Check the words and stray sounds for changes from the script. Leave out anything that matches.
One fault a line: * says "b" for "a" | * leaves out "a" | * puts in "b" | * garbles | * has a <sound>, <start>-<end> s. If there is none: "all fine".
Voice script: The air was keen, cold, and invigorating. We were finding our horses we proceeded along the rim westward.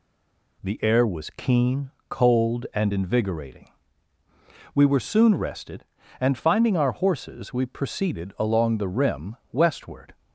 * puts in "soon rested and"